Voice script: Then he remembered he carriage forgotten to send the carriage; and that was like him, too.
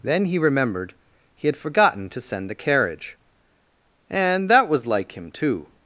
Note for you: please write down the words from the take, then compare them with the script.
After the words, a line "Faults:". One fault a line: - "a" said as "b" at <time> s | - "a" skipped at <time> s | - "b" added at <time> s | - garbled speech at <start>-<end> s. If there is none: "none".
Then he remembered he had forgotten to send the carriage; and that was like him, too.
Faults:
- "carriage" said as "had" at 1.5 s